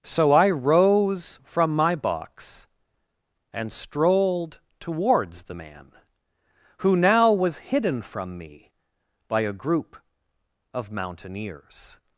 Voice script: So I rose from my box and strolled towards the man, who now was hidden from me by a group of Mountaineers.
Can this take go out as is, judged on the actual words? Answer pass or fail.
pass